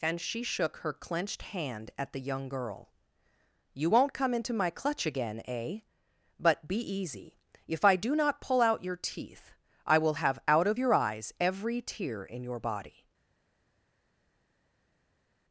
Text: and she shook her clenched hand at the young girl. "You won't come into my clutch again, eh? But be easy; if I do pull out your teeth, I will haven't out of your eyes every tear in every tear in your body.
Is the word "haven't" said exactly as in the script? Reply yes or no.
no